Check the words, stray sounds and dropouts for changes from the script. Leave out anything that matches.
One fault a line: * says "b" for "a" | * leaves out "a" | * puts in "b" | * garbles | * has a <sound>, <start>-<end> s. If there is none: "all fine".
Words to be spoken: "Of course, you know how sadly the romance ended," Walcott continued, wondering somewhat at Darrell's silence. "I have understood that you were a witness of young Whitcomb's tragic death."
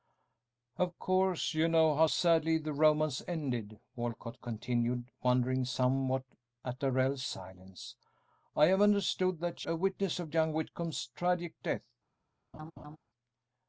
* leaves out "you were"
* has a laugh, 12.5-13.0 s